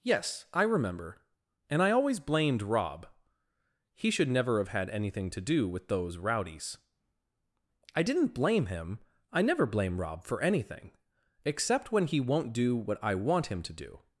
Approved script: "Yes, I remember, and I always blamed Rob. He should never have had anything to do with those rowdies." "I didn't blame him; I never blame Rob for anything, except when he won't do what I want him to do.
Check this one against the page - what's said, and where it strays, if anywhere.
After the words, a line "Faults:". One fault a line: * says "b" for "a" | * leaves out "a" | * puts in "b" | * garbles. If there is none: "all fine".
"Yes, I remember, and I always blamed Rob. He should never have had anything to do with those rowdies." "I didn't blame him; I never blame Rob for anything, except when he won't do what I want him to do.
Faults:
all fine